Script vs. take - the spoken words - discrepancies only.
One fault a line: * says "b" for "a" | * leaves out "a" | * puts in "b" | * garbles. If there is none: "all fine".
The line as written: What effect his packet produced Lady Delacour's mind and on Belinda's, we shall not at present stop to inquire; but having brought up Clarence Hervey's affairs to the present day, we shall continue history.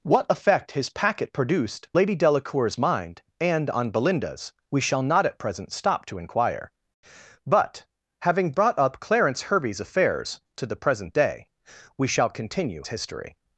all fine